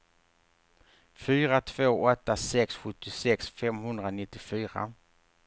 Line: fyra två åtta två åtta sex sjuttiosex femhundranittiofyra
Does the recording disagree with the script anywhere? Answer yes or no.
yes